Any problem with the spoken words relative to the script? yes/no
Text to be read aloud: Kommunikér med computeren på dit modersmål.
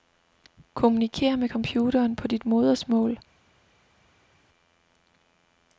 no